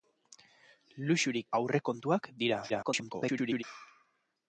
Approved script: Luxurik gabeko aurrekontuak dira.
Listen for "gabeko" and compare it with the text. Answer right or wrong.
wrong